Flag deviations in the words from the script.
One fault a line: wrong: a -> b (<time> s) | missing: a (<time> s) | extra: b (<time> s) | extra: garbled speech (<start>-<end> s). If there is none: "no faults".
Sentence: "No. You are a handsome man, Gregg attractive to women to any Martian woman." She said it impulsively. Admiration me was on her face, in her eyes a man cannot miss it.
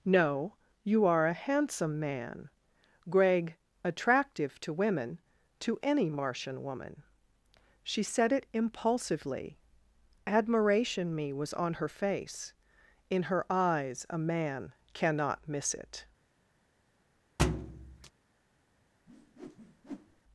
no faults